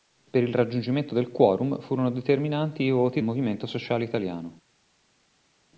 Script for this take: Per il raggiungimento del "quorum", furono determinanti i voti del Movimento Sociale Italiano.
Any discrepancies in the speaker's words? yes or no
yes